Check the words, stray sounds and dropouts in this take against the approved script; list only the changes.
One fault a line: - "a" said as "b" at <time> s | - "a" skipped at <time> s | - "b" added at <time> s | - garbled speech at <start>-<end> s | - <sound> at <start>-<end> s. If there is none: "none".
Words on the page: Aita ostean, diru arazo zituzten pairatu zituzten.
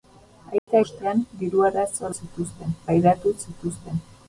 - dropout at 0.6-0.7 s